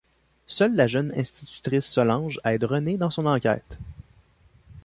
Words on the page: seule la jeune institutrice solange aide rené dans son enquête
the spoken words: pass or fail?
pass